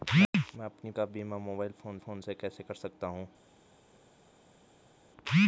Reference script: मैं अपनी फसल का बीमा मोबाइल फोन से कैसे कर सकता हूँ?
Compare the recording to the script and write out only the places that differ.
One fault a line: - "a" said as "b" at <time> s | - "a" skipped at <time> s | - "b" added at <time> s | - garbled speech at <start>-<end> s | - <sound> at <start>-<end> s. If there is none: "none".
- "फसल" skipped at 0.9 s
- "फोन" added at 2.0 s